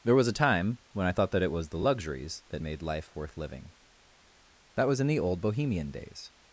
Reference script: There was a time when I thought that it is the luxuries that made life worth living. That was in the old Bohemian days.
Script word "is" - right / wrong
wrong